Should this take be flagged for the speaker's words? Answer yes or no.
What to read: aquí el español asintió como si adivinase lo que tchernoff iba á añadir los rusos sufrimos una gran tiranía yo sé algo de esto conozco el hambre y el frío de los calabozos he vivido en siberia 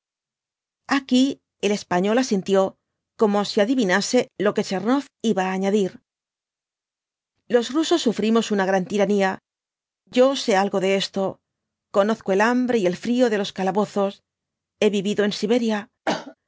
no